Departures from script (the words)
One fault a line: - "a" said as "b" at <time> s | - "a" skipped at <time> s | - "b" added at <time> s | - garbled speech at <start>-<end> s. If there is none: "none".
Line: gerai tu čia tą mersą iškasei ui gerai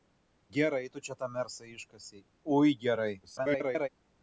- garbled speech at 3.2-3.9 s